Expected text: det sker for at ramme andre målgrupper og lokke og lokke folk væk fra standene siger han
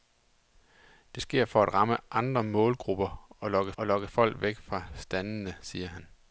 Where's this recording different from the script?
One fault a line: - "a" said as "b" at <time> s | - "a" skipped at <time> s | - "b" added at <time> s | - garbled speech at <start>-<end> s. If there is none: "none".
none